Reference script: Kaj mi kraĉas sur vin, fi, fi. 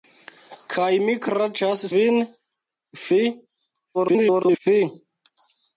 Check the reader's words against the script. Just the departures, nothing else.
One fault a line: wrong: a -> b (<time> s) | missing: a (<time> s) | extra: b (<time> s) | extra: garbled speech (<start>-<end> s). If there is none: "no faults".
missing: sur (1.8 s)
extra: garbled speech (3.9-4.6 s)